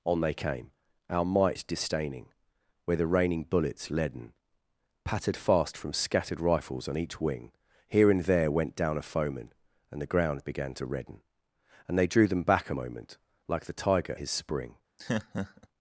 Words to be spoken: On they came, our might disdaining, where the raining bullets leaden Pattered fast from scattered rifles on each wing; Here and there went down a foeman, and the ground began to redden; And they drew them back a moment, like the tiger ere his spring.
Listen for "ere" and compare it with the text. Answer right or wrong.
wrong